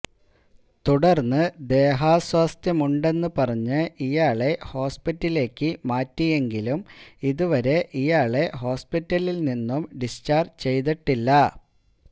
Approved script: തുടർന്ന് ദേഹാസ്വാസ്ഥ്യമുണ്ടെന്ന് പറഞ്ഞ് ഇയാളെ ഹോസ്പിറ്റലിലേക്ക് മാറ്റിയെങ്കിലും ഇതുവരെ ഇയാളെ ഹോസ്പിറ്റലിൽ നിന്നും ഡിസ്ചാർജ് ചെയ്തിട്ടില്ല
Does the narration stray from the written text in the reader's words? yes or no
no